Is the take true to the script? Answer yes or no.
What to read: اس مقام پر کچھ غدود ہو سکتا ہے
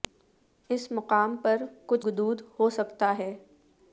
yes